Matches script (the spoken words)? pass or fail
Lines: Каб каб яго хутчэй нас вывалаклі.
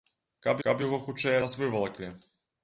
pass